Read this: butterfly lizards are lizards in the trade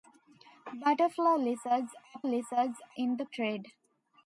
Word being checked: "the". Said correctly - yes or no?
yes